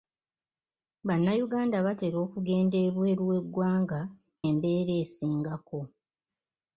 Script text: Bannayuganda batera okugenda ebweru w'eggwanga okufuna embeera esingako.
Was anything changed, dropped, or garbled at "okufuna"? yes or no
yes